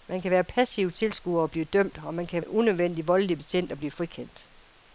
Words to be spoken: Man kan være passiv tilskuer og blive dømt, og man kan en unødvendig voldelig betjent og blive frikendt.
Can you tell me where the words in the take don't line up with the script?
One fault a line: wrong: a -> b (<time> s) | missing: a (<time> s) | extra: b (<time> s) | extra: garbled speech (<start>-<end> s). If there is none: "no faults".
no faults